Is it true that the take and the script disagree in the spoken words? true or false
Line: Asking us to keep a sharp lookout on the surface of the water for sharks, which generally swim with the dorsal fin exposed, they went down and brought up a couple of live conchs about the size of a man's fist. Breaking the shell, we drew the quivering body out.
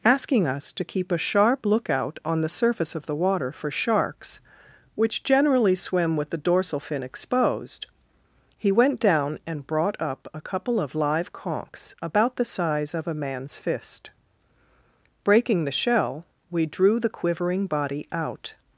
true